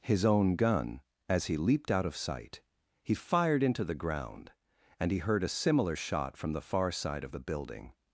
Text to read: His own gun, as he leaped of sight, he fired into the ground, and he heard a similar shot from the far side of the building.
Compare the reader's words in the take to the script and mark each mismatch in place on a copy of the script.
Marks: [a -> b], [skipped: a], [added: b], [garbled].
His own gun, as he leaped [added: out] of sight, he fired into the ground, and he heard a similar shot from the far side of the building.